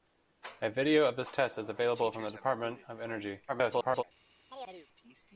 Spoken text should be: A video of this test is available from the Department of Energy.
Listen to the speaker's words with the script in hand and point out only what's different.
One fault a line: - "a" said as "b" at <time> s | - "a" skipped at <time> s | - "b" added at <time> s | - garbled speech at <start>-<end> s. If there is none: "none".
- garbled speech at 3.5-4.0 s